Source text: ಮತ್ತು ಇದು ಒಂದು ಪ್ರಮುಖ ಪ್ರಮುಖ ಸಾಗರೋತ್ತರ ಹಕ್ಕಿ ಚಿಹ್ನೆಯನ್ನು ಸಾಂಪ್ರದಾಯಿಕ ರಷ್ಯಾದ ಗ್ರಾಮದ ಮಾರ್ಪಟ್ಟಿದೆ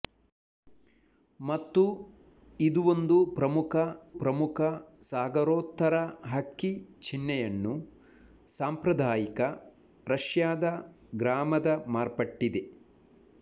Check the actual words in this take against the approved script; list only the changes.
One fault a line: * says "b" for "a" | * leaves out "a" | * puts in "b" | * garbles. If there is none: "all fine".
all fine